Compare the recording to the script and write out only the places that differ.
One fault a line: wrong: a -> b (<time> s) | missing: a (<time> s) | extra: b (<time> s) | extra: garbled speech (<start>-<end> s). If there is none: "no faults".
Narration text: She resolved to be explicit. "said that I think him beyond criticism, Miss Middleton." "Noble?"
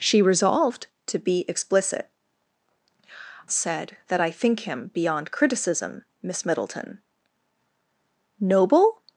no faults